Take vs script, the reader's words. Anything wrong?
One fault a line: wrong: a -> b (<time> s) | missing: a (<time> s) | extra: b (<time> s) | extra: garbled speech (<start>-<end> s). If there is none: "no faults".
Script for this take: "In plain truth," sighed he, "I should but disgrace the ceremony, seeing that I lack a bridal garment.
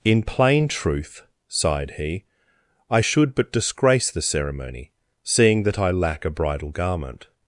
no faults